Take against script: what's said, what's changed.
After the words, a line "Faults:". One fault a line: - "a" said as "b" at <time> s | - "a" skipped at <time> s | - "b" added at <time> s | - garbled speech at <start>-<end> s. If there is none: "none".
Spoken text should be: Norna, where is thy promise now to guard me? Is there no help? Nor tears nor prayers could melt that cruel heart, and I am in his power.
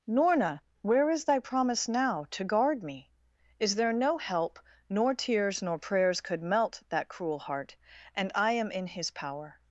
Norna, where is thy promise now to guard me? Is there no help? Nor tears nor prayers could melt that cruel heart, and I am in his power.
Faults:
none